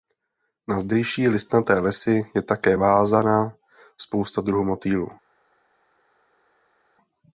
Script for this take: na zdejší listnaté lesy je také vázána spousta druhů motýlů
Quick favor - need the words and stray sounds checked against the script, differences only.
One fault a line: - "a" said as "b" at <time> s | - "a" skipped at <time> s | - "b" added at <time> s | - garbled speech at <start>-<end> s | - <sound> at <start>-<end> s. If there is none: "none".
none